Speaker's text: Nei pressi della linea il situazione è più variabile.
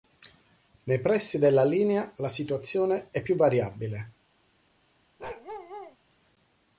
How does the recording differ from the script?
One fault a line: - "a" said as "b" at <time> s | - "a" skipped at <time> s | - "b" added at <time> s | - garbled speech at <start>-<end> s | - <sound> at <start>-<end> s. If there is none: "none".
- "il" said as "la" at 2.1 s
- bark at 5.2-6.0 s